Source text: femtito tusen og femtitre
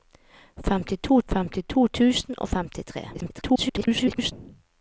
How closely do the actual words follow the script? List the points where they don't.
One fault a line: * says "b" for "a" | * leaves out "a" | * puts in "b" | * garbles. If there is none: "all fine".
* puts in "femtito"
* garbles